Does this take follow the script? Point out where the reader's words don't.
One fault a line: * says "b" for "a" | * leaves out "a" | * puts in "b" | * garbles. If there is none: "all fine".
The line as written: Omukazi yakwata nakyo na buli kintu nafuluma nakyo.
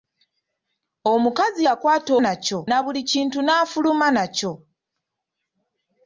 all fine